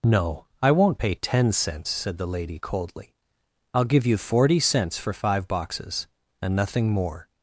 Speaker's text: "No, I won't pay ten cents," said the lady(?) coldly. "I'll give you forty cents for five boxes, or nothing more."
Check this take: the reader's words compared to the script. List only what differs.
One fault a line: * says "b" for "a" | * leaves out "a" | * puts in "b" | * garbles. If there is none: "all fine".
* says "and" for "or"